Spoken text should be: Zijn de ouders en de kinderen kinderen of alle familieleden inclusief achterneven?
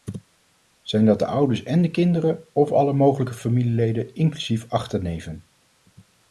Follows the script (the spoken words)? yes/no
no